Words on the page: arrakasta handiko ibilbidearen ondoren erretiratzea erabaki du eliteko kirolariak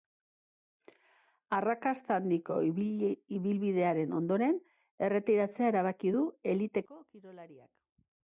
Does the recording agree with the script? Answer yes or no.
yes